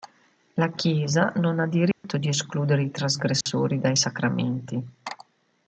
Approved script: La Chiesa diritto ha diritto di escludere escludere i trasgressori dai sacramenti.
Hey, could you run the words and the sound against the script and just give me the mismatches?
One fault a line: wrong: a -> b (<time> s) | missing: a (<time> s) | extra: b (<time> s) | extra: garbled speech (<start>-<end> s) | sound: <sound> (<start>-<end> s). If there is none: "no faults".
wrong: diritto -> non (1.4 s)
sound: dropout (1.9-2.0 s)
missing: escludere (2.8 s)
sound: dropout (3.4-3.5 s)